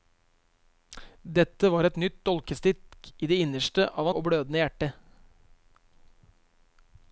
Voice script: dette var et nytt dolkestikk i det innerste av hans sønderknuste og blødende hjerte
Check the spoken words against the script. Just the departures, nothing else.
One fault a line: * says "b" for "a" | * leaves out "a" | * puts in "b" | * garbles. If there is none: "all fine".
* leaves out "hans sønderknuste"